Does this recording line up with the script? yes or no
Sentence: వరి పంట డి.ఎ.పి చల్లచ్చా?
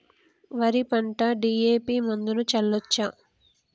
no